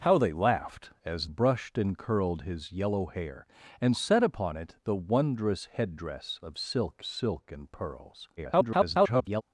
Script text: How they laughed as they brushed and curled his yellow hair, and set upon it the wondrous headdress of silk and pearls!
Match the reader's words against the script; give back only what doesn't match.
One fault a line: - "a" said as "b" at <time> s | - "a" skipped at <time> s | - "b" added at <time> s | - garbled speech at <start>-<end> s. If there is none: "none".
- "they" skipped at 1.3 s
- "silk" added at 7.0 s
- garbled speech at 8.4-9.4 s